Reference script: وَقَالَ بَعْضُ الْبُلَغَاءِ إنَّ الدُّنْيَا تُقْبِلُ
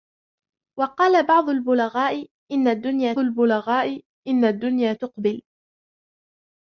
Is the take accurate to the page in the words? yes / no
no